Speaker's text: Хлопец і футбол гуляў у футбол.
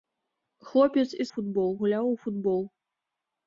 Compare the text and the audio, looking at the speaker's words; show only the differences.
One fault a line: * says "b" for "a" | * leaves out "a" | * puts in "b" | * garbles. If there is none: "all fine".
all fine